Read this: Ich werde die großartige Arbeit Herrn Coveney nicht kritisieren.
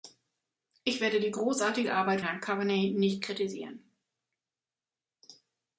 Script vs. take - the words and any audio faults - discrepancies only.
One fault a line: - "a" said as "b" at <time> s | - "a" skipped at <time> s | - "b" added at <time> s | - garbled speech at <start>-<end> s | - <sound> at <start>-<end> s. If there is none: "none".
none